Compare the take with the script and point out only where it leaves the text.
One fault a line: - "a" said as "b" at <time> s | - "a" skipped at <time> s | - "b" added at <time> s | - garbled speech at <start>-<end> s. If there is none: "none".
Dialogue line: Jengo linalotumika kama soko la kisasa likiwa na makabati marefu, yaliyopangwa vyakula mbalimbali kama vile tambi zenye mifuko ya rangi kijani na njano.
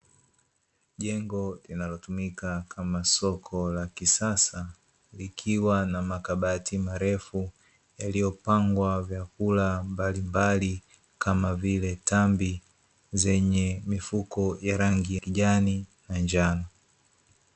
none